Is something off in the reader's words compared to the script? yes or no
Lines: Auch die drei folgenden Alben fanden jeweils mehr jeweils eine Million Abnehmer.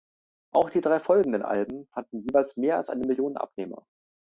yes